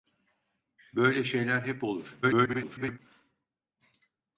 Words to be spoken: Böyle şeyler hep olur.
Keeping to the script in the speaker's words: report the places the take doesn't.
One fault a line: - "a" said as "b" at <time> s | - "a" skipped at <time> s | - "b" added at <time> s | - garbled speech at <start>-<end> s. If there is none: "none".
- garbled speech at 2.2-3.0 s